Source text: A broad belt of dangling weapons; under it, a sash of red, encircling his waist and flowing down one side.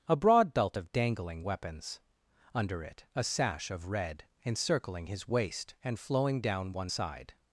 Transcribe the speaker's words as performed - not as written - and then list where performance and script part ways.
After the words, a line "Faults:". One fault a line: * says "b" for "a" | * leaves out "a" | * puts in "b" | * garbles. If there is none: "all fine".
A broad belt of dangling weapons; under it, a sash of red, encircling his waist and flowing down one side.
Faults:
all fine